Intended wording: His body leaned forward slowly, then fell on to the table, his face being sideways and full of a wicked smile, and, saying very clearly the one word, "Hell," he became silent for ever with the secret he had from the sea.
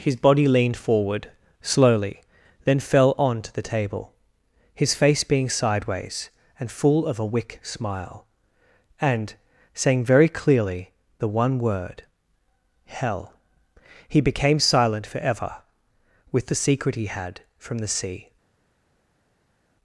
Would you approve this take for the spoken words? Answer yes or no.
no